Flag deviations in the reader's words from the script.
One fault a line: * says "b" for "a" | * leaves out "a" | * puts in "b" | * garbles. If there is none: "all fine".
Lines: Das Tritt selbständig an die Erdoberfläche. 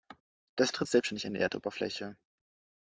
all fine